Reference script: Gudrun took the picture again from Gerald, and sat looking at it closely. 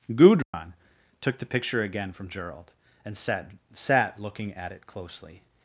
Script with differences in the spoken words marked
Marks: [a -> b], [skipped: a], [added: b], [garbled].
Gudrun took the picture again from Gerald, and sat [added: sat] looking at it closely.